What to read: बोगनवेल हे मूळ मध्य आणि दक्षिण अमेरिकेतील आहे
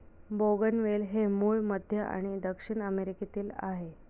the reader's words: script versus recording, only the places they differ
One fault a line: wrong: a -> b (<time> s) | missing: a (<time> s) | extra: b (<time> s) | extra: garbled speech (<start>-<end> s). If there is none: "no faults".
no faults